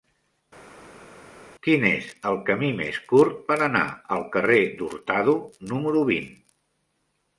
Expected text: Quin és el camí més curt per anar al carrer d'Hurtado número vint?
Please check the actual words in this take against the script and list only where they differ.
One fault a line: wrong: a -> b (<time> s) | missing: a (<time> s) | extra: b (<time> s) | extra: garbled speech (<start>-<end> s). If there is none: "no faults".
no faults